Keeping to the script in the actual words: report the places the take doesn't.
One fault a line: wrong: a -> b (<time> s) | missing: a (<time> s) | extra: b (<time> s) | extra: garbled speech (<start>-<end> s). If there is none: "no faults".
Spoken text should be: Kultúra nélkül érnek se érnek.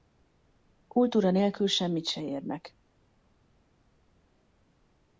wrong: érnek -> semmit (1.7 s)